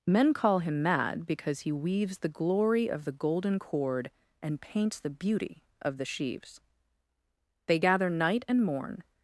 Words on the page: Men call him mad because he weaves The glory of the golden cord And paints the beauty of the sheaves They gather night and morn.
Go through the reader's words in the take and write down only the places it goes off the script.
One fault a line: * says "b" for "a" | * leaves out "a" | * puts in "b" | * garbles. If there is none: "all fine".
all fine